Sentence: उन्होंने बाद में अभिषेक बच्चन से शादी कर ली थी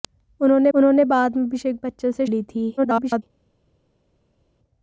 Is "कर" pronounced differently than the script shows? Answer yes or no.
yes